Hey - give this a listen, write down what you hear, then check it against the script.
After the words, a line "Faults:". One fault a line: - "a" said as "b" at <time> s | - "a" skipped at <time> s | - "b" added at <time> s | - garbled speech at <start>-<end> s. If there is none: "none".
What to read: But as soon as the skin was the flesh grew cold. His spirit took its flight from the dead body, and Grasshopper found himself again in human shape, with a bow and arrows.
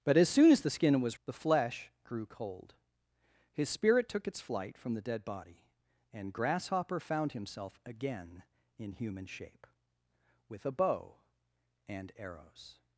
But as soon as the skin was the flesh grew cold. His spirit took its flight from the dead body, and Grasshopper found himself again in human shape, with a bow and arrows.
Faults:
none